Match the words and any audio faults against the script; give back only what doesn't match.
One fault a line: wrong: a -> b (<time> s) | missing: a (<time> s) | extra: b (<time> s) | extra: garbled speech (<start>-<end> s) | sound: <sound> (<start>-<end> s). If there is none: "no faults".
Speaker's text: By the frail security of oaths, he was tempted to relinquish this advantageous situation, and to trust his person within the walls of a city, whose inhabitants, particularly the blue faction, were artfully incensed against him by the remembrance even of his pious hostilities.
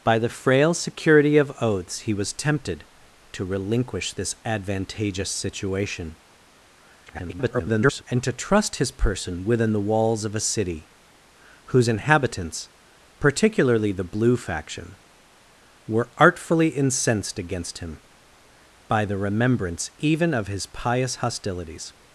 extra: garbled speech (7.1-8.0 s)